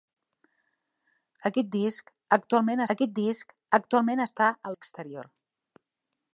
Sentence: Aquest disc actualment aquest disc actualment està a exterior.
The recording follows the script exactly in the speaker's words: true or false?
true